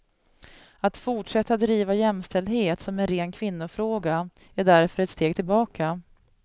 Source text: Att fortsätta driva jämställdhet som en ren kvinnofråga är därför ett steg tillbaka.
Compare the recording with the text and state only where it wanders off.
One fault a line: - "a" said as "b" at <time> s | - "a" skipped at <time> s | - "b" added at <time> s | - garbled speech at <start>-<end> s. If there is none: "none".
none